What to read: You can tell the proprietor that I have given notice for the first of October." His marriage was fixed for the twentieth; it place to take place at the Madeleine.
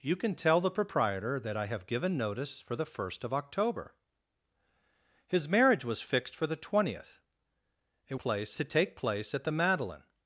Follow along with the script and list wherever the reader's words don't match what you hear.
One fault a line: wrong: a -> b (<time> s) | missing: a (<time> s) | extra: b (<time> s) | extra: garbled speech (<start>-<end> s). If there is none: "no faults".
no faults